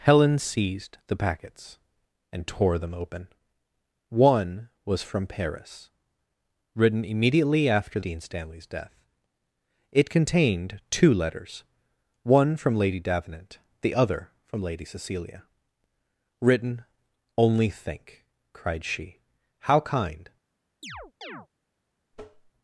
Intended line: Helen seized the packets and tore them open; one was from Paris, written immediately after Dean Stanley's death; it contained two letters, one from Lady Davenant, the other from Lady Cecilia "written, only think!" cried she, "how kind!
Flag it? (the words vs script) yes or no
no